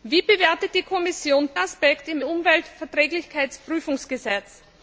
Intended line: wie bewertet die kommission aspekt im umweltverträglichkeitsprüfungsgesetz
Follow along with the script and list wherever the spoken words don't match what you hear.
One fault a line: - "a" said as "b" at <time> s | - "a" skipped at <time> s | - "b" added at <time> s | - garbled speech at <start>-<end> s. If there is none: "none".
none